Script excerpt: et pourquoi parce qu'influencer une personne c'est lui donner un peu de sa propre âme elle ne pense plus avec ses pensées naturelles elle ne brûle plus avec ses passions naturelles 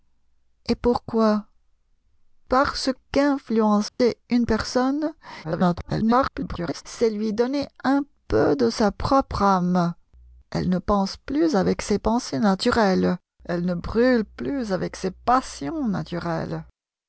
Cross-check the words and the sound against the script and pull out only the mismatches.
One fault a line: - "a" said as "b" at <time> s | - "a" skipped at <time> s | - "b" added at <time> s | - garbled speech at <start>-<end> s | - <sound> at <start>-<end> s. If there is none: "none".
- dropout at 3.9-4.0 s
- garbled speech at 5.4-6.8 s